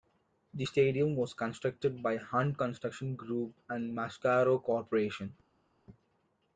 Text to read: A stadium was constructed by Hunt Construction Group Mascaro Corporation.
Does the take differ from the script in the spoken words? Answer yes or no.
yes